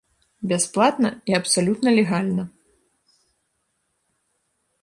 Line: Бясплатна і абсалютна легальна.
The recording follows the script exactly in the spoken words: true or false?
true